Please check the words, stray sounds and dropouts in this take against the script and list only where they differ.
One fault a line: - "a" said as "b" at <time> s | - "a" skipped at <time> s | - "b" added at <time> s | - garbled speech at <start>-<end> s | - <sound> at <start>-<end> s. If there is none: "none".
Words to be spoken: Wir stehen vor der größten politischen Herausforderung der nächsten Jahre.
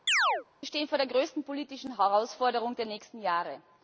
- chirp at 0.1-0.4 s